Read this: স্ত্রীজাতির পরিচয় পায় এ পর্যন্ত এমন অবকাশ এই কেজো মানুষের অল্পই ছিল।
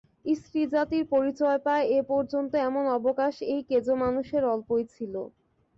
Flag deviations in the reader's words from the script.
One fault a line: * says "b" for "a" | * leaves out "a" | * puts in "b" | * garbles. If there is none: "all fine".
all fine